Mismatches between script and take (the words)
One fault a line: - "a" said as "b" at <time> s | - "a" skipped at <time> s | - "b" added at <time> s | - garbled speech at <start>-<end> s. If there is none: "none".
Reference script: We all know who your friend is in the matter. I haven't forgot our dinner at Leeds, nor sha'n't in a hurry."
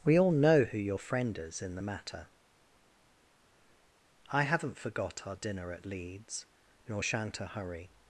- "in" skipped at 7.4 s